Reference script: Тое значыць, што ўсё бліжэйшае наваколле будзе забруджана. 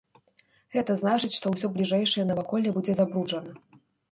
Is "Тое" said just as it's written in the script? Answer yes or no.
no